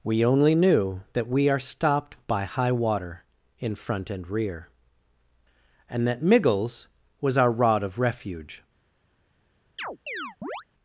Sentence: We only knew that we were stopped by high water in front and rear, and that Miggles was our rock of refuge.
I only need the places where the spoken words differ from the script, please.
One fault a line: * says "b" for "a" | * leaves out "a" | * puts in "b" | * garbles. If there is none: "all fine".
* says "are" for "were"
* says "rod" for "rock"